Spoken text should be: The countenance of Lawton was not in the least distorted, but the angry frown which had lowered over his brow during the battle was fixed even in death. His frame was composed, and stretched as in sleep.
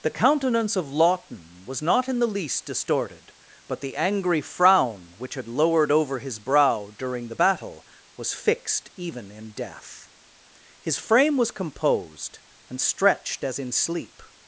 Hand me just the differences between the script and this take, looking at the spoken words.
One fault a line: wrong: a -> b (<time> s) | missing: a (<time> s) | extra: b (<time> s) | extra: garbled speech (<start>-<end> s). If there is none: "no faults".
no faults